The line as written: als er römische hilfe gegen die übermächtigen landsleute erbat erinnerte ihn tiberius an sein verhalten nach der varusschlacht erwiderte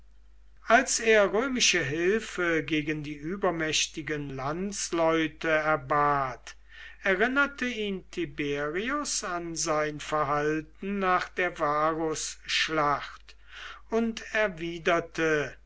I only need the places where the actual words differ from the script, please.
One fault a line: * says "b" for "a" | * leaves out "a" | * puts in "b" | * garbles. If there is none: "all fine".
* puts in "und"